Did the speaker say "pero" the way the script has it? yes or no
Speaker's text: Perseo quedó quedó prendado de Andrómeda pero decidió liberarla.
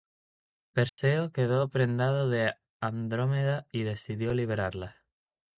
no